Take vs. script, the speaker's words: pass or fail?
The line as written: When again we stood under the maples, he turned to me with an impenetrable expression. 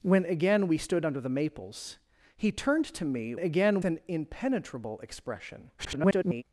fail